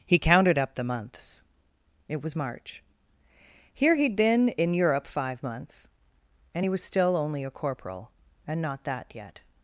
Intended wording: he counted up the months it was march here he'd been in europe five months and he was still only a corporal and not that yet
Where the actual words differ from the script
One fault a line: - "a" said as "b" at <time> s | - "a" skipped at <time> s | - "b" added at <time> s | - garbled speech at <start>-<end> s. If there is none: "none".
none